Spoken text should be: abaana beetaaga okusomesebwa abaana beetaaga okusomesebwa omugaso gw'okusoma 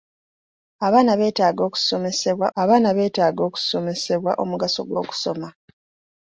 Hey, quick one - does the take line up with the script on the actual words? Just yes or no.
yes